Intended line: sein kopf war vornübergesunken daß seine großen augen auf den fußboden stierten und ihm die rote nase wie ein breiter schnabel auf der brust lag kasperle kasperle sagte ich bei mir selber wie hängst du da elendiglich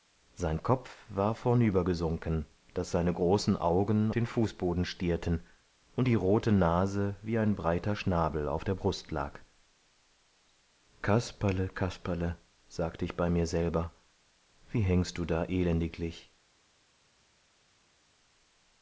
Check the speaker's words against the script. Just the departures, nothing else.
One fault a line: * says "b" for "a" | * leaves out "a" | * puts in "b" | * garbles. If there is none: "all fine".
* leaves out "auf"
* leaves out "ihm"